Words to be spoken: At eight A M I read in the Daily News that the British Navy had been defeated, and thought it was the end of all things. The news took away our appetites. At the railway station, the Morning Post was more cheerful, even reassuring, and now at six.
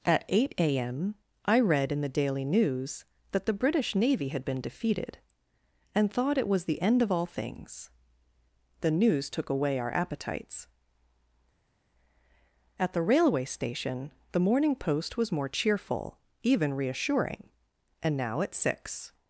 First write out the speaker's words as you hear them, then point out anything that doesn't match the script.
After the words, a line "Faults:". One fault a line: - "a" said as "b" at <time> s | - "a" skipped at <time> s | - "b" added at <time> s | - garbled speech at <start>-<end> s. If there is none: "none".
At eight A M I read in the Daily News that the British Navy had been defeated, and thought it was the end of all things. The news took away our appetites. At the railway station, the Morning Post was more cheerful, even reassuring, and now at six.
Faults:
none